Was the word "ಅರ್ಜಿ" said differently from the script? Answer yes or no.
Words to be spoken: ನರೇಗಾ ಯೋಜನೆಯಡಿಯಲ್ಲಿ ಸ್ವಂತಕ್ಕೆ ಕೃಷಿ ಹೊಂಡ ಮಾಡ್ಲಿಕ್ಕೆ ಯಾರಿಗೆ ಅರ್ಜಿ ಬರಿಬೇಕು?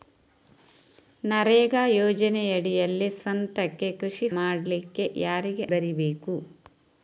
yes